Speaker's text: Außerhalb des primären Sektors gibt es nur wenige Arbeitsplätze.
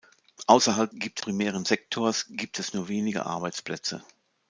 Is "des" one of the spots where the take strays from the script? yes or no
yes